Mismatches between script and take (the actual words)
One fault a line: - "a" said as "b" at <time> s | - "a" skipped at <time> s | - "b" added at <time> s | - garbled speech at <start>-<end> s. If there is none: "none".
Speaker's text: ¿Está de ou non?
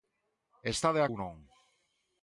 none